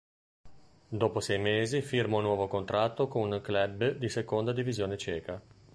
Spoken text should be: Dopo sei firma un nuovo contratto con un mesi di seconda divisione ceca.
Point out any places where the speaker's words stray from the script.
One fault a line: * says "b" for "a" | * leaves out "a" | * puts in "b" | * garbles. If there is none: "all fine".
* puts in "mesi"
* says "club" for "mesi"